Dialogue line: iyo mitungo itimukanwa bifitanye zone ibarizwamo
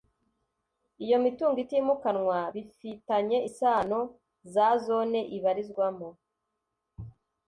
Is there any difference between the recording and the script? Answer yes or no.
yes